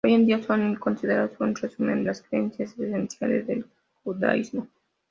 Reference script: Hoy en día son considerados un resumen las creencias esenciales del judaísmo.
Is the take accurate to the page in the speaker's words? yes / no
yes